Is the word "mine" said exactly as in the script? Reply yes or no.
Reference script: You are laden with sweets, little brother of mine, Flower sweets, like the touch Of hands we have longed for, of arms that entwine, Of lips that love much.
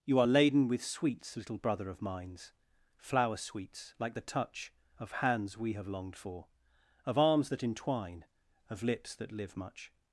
no